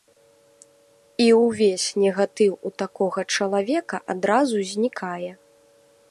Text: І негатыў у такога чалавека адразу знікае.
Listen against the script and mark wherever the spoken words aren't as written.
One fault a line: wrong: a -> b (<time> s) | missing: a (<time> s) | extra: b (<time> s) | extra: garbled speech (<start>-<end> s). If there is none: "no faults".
extra: ўвесь (1.4 s)